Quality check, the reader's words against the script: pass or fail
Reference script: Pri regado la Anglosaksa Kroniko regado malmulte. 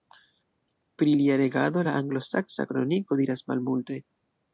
fail